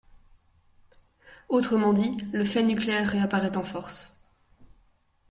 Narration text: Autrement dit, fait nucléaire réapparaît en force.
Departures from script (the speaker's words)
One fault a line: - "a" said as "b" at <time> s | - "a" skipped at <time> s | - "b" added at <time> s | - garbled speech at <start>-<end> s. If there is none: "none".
- "le" added at 2.3 s